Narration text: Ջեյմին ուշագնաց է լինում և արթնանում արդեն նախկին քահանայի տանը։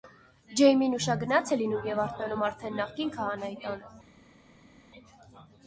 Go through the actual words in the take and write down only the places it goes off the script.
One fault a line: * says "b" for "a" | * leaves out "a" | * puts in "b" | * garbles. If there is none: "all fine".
all fine